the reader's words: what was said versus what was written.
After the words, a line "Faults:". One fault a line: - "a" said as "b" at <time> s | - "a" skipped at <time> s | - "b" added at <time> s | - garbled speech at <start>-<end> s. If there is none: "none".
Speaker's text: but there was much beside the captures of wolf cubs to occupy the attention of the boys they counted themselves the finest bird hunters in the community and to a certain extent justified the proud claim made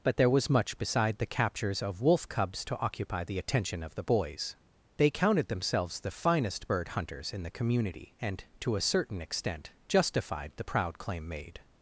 but there was much beside the captures of wolf cubs to occupy the attention of the boys they counted themselves the finest bird hunters in the community and to a certain extent justified the proud claim made
Faults:
none